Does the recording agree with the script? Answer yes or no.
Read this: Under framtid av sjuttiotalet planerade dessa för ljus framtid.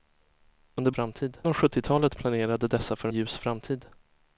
yes